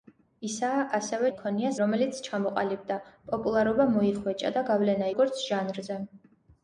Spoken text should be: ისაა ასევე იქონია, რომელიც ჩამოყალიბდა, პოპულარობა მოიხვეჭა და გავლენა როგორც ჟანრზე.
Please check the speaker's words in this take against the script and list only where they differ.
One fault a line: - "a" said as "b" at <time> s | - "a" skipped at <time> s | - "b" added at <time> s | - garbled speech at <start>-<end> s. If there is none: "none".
none